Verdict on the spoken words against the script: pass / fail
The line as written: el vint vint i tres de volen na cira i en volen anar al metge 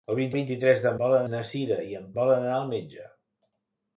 pass